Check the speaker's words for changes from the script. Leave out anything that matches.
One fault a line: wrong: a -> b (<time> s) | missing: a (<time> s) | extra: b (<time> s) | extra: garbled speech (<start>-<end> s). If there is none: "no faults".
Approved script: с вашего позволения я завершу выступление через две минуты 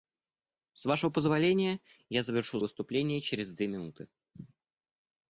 no faults